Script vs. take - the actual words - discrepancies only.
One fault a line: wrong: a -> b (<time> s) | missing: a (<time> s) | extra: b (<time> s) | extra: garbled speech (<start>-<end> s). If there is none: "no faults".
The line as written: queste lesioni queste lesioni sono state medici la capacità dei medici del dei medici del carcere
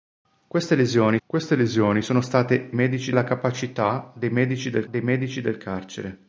no faults